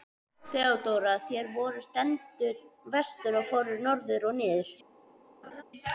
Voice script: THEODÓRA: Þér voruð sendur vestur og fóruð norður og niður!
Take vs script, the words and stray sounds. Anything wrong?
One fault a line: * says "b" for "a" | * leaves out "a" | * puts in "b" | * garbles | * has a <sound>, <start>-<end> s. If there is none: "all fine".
* has a laugh, 5.4-5.6 s